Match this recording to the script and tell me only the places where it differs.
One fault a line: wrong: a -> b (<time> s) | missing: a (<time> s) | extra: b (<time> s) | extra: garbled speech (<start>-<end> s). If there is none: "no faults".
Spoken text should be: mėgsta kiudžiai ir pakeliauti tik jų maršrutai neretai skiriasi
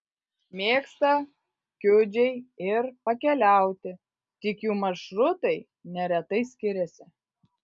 no faults